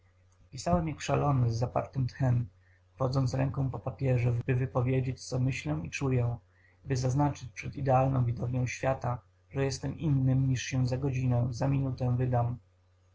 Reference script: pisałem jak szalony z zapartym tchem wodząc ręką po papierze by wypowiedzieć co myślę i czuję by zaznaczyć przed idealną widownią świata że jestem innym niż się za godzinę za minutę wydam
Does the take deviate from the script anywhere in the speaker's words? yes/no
no